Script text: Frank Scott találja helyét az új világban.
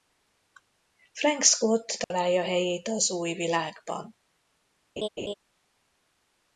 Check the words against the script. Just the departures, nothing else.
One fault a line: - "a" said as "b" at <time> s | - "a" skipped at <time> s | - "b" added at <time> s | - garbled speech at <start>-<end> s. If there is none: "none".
none